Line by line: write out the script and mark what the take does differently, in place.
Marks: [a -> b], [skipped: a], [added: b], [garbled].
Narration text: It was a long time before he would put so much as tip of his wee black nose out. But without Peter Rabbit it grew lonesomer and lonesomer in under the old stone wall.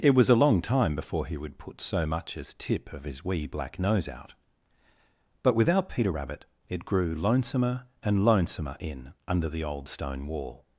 It was a long time before he would put so much as tip of his wee black nose out. But without Peter Rabbit it grew lonesomer and lonesomer in under the old stone wall.